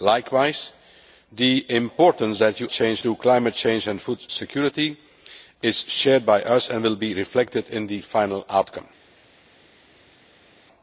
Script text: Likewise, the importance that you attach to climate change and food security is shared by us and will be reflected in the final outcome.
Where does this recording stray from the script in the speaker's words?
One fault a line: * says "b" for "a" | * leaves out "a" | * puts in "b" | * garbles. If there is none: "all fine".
* says "change" for "attach"